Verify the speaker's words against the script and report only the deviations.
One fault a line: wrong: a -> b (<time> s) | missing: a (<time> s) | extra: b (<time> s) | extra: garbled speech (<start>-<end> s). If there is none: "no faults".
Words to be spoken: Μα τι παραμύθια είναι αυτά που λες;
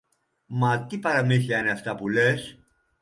no faults